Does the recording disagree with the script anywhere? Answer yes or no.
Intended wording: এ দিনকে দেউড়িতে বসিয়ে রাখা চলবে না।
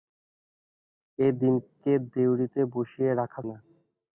yes